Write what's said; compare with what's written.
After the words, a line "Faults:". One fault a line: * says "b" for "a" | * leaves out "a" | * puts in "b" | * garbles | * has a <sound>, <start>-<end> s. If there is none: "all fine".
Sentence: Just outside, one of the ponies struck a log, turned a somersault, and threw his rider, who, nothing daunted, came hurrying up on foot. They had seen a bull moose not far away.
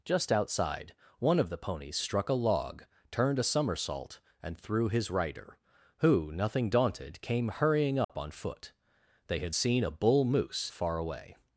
Just outside, one of the ponies struck a log, turned a somersault, and threw his rider, who, nothing daunted, came hurrying up on foot. They had seen a bull moose far away.
Faults:
* has a dropout, 8.0-8.1 s
* leaves out "not"